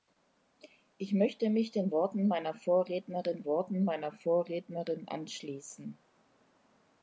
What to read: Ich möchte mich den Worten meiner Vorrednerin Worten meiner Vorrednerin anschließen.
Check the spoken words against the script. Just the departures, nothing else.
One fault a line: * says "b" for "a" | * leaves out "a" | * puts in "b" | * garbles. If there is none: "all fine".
all fine